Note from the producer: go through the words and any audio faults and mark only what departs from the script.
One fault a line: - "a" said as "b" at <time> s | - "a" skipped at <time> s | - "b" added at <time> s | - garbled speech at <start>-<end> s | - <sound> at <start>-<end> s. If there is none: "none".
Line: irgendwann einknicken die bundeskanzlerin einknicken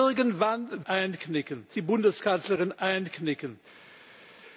none